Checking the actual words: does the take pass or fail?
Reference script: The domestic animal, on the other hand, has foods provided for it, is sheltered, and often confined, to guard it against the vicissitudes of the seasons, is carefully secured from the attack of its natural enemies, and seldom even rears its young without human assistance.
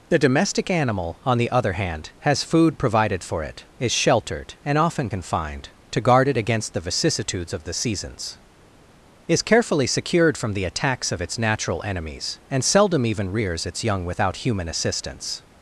fail